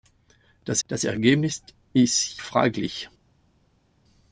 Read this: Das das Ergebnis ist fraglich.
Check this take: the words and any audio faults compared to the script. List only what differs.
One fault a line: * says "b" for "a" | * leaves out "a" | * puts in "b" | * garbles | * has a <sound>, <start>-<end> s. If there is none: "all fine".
all fine